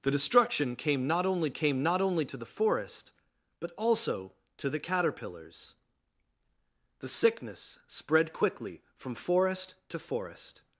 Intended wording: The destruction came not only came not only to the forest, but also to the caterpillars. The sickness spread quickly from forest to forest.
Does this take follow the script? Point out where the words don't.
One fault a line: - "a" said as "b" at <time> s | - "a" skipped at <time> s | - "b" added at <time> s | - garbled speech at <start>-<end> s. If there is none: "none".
none